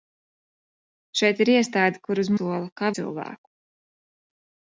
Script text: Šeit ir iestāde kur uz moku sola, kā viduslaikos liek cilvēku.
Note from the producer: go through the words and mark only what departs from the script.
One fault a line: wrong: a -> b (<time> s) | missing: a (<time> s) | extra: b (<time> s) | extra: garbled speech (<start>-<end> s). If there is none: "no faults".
missing: moku (2.3 s)
missing: viduslaikos liek (2.9 s)